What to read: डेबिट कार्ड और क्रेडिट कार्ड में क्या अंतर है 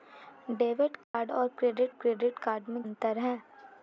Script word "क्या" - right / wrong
wrong